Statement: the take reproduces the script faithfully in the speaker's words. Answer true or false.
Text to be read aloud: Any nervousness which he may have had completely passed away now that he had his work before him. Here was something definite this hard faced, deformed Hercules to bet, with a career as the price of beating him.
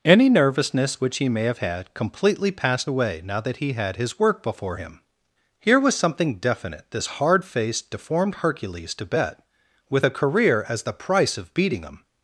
true